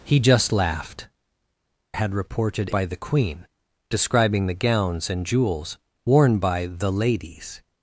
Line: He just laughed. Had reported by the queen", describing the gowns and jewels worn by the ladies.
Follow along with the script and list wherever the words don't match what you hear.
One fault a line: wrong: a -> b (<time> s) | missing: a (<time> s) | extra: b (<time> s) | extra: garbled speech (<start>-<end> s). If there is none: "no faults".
no faults